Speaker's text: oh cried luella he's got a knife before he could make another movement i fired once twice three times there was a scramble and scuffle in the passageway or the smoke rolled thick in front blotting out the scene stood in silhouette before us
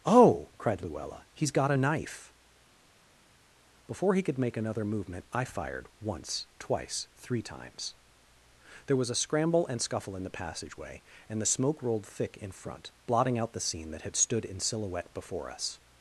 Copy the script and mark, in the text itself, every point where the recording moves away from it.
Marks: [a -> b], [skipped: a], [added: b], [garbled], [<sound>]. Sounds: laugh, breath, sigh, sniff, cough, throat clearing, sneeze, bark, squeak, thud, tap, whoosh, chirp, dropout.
oh cried luella he's got a knife before he could make another movement i fired once twice three times there was a scramble and scuffle in the passageway [or -> and] the smoke rolled thick in front blotting out the scene [added: that had] stood in silhouette before us